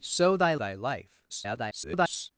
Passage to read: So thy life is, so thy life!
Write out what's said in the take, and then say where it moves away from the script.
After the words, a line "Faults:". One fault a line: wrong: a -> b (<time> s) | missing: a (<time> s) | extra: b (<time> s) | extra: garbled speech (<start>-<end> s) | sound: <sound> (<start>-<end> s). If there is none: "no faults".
So thy thy life! [garbled]
Faults:
missing: life is so (0.6 s)
extra: garbled speech (1.3-2.3 s)